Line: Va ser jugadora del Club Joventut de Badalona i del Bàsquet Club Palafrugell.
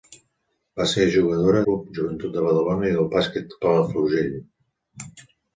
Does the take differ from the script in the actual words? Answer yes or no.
yes